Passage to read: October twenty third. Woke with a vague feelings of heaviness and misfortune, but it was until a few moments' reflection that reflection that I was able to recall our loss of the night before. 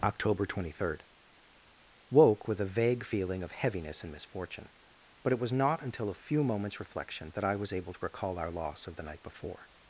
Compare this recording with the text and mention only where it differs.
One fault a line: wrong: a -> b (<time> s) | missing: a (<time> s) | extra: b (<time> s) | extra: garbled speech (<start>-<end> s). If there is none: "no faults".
wrong: feelings -> feeling (3.0 s)
extra: not (5.5 s)
missing: reflection that (7.4 s)